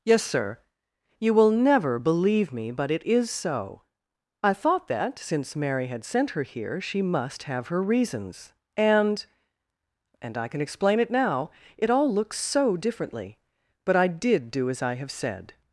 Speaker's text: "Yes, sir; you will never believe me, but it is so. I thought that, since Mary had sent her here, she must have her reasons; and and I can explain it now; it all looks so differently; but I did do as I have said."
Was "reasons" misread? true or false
false